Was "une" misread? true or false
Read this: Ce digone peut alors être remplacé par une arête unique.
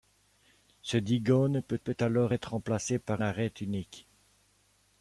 true